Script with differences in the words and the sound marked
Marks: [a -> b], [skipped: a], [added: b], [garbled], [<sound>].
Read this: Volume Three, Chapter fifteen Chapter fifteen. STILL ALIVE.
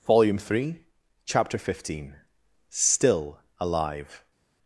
Volume Three, Chapter fifteen [skipped: Chapter fifteen.] STILL ALIVE.